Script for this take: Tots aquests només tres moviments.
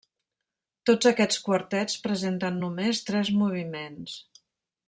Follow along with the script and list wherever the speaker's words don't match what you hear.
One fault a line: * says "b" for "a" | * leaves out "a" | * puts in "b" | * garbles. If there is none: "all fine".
* puts in "quartets presenten"